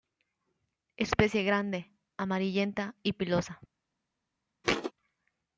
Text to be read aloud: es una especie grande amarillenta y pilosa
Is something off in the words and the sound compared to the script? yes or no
yes